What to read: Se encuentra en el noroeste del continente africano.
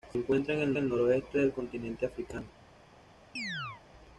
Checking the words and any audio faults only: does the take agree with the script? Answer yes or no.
no